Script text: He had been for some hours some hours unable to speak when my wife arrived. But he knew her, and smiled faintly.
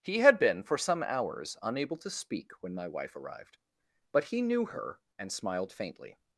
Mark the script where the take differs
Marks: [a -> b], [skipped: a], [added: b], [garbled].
He had been for some hours [skipped: some hours] unable to speak when my wife arrived. But he knew her, and smiled faintly.